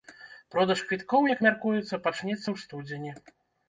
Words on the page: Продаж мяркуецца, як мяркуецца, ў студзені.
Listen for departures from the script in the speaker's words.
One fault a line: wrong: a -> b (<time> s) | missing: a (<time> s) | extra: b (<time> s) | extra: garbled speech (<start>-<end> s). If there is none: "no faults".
wrong: мяркуецца -> квіткоў (0.9 s)
extra: пачнецца (2.1 s)